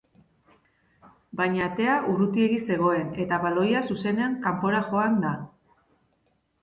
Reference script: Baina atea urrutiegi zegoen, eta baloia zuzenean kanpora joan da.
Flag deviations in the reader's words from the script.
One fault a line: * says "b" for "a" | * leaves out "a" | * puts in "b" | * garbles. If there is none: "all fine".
all fine